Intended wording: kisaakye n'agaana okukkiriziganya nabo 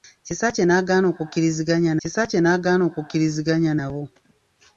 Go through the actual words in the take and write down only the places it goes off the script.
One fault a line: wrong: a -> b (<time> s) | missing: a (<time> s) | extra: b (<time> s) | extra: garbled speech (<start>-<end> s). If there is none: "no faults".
extra: kisaakye n'agaana okukkiriziganya (2.0 s)